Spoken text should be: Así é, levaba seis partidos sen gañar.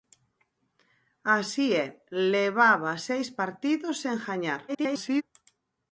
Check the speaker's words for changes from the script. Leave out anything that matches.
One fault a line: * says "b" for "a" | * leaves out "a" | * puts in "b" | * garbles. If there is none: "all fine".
* garbles